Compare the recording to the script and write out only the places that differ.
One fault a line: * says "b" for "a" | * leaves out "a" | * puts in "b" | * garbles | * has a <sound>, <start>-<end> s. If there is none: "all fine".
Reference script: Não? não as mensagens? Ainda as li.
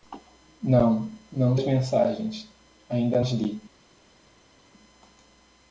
all fine